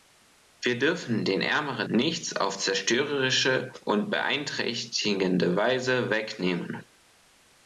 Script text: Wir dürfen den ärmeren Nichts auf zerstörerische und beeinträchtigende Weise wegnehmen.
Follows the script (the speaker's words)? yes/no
yes